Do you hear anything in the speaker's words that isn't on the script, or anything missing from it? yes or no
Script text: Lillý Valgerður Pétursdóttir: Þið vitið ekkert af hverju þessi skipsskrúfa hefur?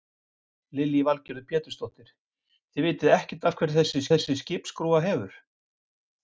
yes